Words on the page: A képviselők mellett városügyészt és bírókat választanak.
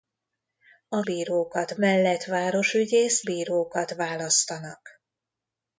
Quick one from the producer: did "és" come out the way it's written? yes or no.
no